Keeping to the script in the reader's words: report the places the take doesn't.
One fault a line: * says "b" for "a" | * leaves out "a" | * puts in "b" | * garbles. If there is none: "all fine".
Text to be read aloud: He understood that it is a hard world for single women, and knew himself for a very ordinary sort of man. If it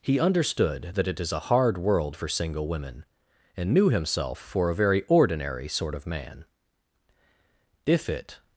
all fine